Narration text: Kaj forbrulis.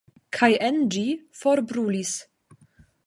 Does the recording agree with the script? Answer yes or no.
no